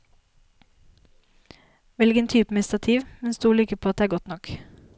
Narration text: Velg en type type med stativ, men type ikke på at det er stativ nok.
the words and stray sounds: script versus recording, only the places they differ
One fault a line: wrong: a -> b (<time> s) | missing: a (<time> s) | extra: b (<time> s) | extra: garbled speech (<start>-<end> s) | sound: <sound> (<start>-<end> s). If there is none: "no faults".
missing: type (2.5 s)
wrong: type -> stol (3.3 s)
wrong: stativ -> godt (4.1 s)